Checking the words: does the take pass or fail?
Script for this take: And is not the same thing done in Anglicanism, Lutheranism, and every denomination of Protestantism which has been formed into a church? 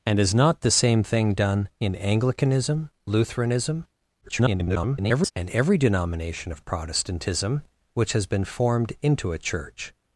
fail